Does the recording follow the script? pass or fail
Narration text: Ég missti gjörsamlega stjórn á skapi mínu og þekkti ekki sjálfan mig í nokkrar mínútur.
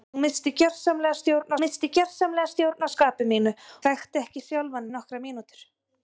fail